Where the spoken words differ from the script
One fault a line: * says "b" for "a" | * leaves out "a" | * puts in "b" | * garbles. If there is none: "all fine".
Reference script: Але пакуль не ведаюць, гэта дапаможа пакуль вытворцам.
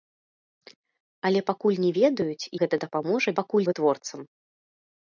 all fine